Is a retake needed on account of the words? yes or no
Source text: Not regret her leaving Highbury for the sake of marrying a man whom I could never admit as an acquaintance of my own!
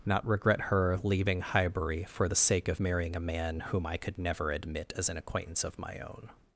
no